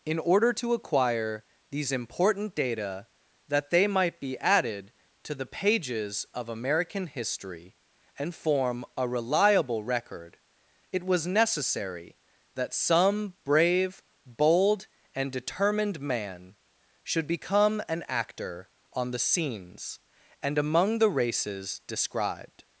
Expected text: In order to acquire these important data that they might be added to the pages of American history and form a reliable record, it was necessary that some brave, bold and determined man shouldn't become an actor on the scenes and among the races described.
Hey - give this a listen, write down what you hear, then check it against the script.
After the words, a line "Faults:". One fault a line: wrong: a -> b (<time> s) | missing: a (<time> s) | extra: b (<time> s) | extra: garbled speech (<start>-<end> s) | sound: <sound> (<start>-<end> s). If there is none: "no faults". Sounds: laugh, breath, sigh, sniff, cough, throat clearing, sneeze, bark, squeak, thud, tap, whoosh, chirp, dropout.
In order to acquire these important data that they might be added to the pages of American history and form a reliable record, it was necessary that some brave, bold and determined man should become an actor on the scenes and among the races described.
Faults:
wrong: shouldn't -> should (17.0 s)